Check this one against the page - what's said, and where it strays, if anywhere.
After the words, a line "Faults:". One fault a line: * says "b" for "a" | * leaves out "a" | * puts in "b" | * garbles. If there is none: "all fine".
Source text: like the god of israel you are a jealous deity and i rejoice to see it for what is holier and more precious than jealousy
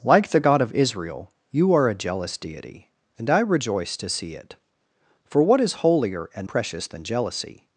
like the god of israel you are a jealous deity and i rejoice to see it for what is holier and precious than jealousy
Faults:
* leaves out "more"